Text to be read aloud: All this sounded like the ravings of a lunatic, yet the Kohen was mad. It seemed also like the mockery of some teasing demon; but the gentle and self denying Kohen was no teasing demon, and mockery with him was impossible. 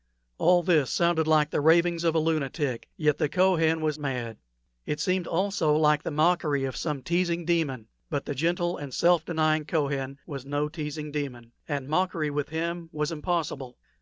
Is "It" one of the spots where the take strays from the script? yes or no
no